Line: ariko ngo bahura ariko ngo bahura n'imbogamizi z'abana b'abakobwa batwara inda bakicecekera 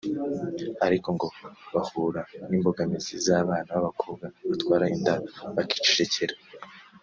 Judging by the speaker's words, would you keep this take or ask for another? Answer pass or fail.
fail